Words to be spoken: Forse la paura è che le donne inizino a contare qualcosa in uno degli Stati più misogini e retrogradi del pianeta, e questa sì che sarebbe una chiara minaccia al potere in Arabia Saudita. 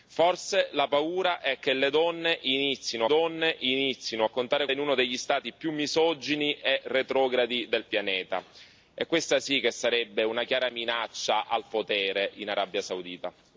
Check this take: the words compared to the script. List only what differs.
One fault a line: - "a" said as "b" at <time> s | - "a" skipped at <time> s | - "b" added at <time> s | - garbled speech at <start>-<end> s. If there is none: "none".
- "donne inizino" added at 3.1 s
- "qualcosa" skipped at 4.7 s